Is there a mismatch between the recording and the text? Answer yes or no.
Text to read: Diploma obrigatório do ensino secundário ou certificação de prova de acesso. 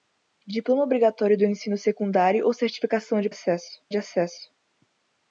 yes